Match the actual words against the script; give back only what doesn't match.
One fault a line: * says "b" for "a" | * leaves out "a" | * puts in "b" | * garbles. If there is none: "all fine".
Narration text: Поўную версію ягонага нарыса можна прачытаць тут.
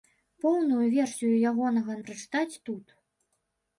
* leaves out "нарыса можна"